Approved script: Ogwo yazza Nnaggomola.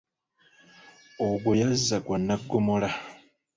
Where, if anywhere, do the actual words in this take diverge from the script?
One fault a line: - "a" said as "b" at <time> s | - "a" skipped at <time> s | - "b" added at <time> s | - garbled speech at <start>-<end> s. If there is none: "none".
- "gwa" added at 2.1 s